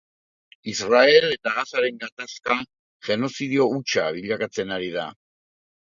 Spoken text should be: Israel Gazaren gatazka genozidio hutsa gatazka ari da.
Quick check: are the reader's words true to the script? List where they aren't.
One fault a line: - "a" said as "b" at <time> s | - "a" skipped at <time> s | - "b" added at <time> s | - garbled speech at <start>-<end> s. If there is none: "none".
- "eta" added at 1.4 s
- "gatazka" said as "bilakatzen" at 4.2 s